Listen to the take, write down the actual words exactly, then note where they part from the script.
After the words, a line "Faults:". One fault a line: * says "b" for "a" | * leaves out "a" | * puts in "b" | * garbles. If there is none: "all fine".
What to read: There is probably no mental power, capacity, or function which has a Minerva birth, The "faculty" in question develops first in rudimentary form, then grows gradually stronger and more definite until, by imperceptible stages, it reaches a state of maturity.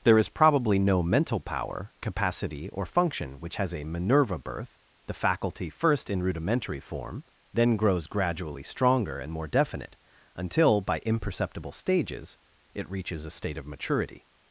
There is probably no mental power, capacity, or function which has a Minerva birth, The "faculty" first in rudimentary form, then grows gradually stronger and more definite until, by imperceptible stages, it reaches a state of maturity.
Faults:
* leaves out "in question develops"